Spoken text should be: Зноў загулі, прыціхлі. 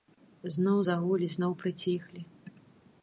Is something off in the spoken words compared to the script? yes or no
yes